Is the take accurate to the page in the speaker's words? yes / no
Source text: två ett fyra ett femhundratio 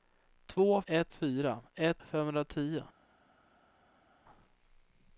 yes